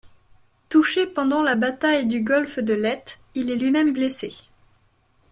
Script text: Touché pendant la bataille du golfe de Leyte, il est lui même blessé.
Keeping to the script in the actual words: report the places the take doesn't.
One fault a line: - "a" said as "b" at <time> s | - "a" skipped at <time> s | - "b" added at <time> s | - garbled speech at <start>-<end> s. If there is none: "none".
none